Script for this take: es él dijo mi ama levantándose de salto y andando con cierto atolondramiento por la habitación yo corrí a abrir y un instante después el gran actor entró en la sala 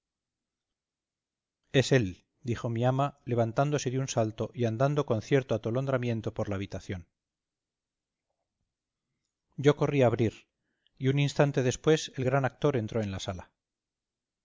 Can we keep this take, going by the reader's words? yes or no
no